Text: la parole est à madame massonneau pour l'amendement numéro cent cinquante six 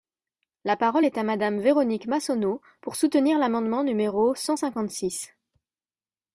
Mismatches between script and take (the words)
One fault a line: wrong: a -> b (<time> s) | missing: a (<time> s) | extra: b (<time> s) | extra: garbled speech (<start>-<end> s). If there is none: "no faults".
extra: véronique (1.6 s)
extra: soutenir (3.0 s)